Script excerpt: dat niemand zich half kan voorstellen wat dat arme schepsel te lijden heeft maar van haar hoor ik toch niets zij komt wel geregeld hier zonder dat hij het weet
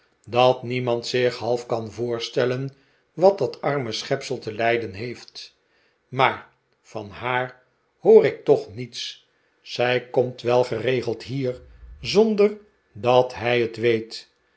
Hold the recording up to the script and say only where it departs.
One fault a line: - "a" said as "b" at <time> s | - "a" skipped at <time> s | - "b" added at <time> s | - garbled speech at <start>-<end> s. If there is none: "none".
none